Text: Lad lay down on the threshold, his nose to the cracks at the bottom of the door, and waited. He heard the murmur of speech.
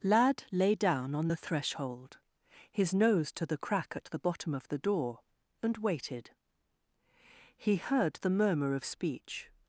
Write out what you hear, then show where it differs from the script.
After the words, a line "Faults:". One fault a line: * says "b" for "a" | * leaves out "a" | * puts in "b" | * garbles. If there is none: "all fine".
Lad lay down on the threshold, his nose to the crack at the bottom of the door, and waited. He heard the murmur of speech.
Faults:
* says "crack" for "cracks"